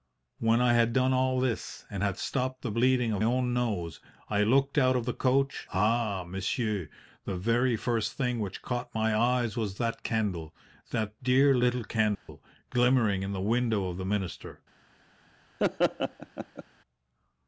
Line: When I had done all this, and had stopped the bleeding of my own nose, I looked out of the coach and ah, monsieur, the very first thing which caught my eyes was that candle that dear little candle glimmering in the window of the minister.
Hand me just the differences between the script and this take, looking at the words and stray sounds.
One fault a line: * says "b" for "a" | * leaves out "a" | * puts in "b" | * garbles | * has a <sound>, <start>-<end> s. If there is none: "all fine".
* leaves out "my"
* leaves out "and"
* has a dropout, 12.1-12.3 s
* has a laugh, 15.6-16.6 s